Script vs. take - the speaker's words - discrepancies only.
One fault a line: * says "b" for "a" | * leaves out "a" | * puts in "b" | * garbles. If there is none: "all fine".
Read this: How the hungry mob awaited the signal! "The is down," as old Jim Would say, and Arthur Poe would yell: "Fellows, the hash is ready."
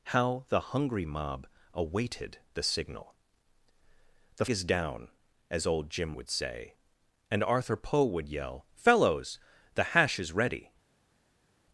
all fine